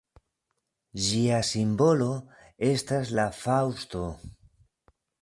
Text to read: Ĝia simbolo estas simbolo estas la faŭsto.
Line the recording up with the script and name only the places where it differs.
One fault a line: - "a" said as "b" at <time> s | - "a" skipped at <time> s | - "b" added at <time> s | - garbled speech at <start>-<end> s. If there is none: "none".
- "simbolo estas" skipped at 3.1 s